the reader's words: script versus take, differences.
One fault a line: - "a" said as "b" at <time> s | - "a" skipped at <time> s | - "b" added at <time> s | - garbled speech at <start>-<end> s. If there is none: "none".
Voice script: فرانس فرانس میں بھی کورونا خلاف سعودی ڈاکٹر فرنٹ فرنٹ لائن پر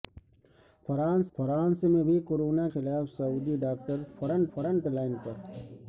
none